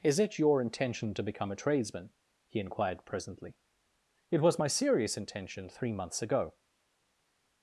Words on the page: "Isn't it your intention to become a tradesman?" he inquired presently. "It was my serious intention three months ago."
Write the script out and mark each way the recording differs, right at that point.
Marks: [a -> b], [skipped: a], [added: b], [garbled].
["Isn't -> Is] it your intention to become a tradesman?" he inquired presently. "It was my serious intention three months ago."